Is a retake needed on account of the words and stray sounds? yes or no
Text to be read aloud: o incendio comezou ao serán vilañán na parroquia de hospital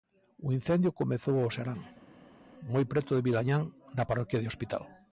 yes